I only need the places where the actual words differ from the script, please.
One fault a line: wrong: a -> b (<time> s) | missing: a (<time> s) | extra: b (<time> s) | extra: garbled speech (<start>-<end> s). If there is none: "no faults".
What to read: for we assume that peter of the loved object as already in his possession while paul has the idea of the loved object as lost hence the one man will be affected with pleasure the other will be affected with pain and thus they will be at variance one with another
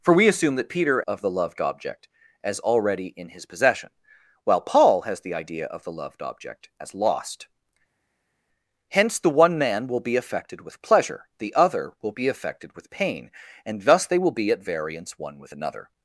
no faults